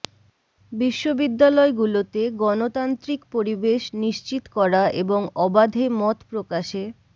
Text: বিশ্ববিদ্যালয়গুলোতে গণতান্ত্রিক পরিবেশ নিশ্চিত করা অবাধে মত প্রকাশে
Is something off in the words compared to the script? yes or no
yes